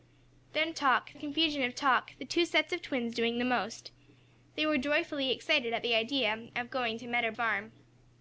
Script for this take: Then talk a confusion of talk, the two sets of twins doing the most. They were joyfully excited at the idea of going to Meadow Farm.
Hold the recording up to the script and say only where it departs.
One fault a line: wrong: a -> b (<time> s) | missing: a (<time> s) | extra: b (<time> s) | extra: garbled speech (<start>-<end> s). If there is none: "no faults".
no faults